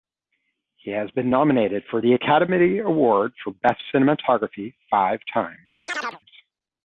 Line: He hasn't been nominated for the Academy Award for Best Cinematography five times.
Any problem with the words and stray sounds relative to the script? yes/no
yes